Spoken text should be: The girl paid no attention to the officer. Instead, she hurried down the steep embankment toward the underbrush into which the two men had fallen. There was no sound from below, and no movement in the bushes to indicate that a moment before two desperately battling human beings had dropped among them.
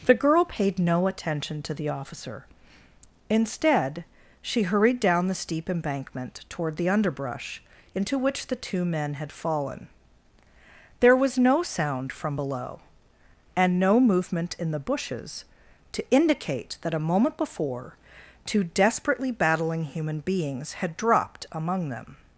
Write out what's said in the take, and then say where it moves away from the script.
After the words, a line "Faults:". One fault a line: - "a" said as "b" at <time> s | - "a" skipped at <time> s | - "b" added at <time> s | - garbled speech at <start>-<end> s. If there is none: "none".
The girl paid no attention to the officer. Instead, she hurried down the steep embankment toward the underbrush into which the two men had fallen. There was no sound from below, and no movement in the bushes to indicate that a moment before two desperately battling human beings had dropped among them.
Faults:
none